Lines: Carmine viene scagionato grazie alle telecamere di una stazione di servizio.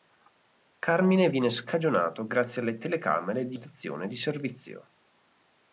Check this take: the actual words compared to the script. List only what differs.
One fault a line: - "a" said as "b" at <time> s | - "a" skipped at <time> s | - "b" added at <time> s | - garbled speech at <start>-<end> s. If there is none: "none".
- "una" skipped at 3.6 s